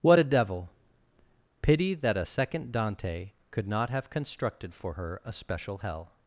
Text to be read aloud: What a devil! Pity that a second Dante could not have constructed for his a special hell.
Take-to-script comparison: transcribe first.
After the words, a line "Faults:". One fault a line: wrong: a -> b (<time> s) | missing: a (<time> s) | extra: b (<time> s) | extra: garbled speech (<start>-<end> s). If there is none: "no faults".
What a devil! Pity that a second Dante could not have constructed for her a special hell.
Faults:
wrong: his -> her (4.9 s)